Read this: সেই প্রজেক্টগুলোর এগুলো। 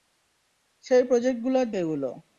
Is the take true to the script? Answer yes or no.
yes